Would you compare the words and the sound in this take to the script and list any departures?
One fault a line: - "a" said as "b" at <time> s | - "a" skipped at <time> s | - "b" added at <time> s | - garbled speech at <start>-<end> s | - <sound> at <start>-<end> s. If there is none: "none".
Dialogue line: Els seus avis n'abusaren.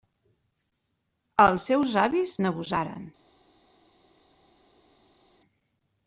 none